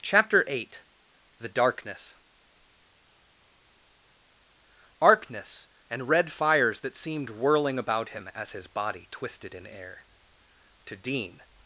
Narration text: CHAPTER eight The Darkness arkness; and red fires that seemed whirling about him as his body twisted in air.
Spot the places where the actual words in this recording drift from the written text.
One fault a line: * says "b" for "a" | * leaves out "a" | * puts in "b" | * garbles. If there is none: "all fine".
* puts in "To Dean"